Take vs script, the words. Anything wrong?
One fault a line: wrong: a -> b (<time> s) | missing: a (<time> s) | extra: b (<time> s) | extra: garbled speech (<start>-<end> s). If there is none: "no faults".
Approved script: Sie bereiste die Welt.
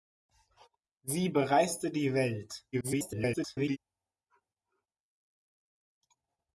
extra: garbled speech (2.7-3.8 s)